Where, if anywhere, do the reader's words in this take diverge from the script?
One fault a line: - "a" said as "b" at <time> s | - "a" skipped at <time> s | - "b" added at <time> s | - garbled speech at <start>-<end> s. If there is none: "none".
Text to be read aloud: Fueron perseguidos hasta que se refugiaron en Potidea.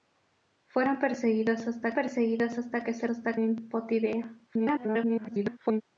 - "perseguidos hasta" added at 1.9 s
- "refugiaron" said as "hasta" at 3.1 s
- garbled speech at 4.5-5.8 s